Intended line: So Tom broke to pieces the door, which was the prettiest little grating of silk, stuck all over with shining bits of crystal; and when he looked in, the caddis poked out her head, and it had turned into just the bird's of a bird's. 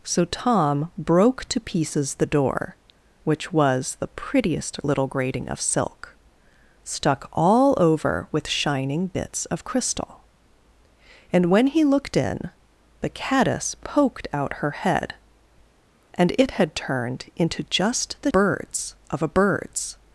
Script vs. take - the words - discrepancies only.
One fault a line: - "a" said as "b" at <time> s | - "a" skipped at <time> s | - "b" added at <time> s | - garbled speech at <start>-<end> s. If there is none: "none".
none